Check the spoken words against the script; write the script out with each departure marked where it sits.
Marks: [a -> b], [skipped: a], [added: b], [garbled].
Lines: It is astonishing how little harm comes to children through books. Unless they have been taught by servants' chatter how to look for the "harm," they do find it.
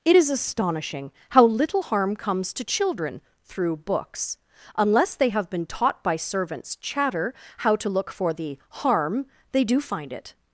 It is astonishing how little harm comes to children through books. Unless they have been taught by servants' chatter how to look for the "harm," they do find it.